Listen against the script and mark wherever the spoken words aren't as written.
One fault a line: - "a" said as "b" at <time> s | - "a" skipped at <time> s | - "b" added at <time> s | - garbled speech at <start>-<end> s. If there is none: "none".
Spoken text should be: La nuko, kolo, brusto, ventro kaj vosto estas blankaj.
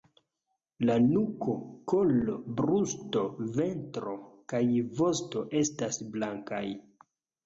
none